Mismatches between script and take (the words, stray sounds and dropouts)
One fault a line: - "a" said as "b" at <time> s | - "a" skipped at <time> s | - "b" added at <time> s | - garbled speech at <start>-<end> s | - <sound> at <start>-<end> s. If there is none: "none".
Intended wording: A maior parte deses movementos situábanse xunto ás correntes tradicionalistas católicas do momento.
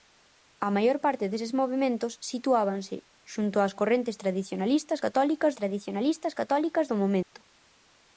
- "tradicionalistas católicas" added at 5.6 s
- dropout at 7.2-7.3 s